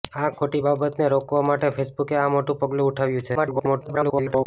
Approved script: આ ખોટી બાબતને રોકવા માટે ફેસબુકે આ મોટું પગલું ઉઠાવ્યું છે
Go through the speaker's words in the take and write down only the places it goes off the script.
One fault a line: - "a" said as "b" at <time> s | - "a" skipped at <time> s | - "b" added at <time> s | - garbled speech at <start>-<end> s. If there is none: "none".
- garbled speech at 3.4-4.5 s